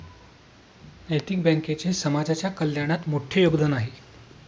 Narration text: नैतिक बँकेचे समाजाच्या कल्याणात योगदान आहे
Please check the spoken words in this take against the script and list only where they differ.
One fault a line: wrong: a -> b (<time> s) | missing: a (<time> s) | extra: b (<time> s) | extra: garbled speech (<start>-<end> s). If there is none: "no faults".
extra: मोठे (3.1 s)